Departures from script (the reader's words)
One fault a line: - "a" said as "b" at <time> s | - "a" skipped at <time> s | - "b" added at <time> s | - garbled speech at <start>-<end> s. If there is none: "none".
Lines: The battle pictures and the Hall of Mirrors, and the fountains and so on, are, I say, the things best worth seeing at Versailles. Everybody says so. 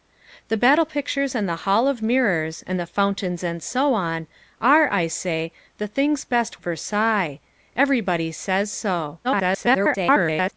- "worth seeing at" skipped at 6.6 s
- garbled speech at 9.2-10.5 s